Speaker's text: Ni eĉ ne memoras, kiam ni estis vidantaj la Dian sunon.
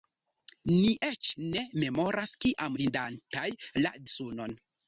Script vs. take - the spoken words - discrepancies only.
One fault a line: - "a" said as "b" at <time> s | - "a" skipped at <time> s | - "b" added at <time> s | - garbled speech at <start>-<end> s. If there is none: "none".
- "ni estis" skipped at 2.8 s
- "Dian" skipped at 3.9 s